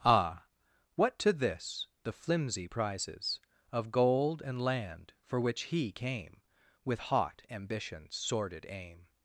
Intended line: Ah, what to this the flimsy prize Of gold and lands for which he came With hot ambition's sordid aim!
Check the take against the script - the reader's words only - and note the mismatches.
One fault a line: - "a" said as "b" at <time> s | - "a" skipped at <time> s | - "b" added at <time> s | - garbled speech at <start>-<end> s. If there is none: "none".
- "prize" said as "prizes" at 2.7 s
- "lands" said as "land" at 4.6 s